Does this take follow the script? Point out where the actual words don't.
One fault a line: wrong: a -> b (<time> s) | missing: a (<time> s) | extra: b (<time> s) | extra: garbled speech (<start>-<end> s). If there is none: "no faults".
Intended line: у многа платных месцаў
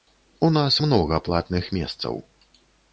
extra: нас (0.6 s)